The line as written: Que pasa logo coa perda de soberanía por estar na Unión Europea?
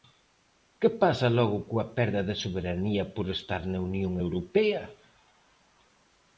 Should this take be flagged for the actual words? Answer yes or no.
no